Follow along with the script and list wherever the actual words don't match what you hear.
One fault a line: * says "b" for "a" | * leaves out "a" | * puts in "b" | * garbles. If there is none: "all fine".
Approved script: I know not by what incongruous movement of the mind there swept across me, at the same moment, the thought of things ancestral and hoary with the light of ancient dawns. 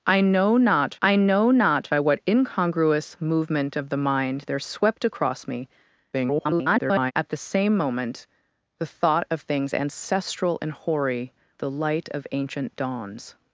* puts in "I know not"
* garbles
* leaves out "with"